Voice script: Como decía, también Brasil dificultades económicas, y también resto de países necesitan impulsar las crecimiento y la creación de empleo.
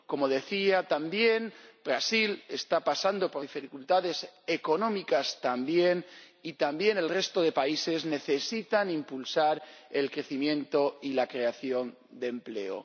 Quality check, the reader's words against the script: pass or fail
fail